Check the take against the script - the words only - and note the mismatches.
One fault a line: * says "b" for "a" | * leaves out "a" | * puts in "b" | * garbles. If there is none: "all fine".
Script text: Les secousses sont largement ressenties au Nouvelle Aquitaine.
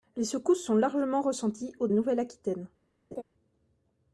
all fine